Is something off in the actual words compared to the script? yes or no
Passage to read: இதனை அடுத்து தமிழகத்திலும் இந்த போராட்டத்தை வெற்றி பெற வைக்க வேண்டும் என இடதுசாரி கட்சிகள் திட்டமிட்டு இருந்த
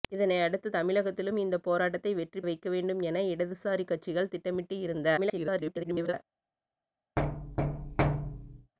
yes